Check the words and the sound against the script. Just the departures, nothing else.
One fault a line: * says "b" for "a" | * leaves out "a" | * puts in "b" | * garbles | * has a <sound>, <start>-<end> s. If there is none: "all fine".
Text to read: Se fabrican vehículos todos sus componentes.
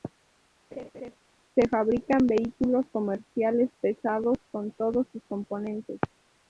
* has a laugh, 0.7-1.2 s
* puts in "comerciales pesados con"